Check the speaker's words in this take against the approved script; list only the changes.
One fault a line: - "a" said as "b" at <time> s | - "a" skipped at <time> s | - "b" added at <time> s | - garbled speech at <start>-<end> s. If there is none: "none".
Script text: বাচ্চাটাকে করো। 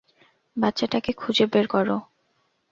- "খুঁজে বের" added at 1.1 s